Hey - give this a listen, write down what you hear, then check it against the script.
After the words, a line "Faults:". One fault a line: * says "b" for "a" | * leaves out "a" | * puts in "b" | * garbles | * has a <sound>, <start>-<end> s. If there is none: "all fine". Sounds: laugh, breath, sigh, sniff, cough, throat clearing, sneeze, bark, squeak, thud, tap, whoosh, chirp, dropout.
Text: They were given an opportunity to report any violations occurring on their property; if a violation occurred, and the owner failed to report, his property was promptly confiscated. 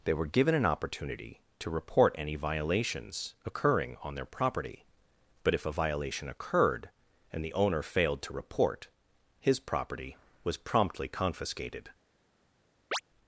They were given an opportunity to report any violations occurring on their property; but if a violation occurred, and the owner failed to report, his property was promptly confiscated.
Faults:
* puts in "but"
* has a chirp, 12.9-13.0 s